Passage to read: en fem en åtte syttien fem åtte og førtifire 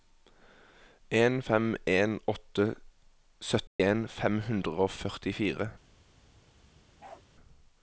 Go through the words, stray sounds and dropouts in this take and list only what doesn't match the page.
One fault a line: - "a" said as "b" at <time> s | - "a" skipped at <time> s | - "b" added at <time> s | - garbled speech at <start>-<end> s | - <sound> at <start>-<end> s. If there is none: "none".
- dropout at 3.7-3.8 s
- "åtte" said as "hundre" at 4.5 s
- bark at 7.0-7.2 s